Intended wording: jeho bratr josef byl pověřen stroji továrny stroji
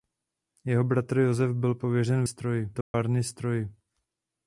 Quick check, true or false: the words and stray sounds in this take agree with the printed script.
false